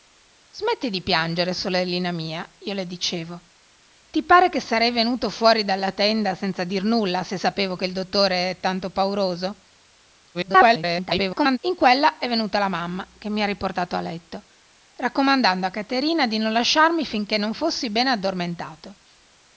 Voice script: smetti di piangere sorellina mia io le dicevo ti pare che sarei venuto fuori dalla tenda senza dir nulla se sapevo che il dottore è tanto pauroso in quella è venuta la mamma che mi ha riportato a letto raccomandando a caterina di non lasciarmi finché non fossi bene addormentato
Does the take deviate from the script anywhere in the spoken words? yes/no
yes